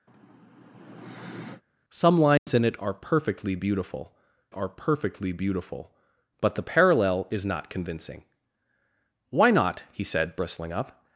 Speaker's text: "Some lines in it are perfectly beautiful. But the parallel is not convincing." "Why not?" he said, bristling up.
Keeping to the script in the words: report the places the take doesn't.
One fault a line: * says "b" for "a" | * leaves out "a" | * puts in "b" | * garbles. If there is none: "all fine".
* puts in "are perfectly beautiful"